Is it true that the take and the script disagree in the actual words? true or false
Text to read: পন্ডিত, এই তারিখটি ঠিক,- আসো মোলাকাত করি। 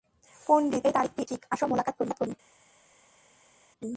false